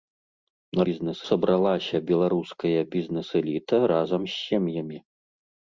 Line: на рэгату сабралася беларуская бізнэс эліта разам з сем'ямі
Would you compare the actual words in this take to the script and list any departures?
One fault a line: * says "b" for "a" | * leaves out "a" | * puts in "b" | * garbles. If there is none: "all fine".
* says "бізнэс" for "рэгату"